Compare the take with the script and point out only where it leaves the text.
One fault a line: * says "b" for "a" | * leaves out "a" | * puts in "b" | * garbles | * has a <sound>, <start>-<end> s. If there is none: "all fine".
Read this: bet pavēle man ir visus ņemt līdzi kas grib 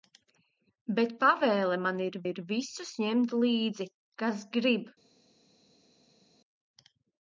* puts in "ir"